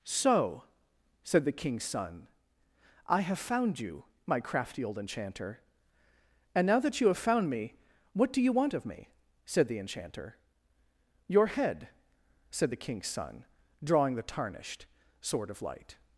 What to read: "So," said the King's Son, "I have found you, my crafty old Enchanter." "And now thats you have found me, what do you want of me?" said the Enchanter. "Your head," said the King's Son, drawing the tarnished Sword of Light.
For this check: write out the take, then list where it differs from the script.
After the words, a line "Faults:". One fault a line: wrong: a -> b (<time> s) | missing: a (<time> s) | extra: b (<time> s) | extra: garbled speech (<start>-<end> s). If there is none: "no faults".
"So," said the King's Son, "I have found you, my crafty old Enchanter." "And now that you have found me, what do you want of me?" said the Enchanter. "Your head," said the King's Son, drawing the tarnished Sword of Light.
Faults:
wrong: thats -> that (6.8 s)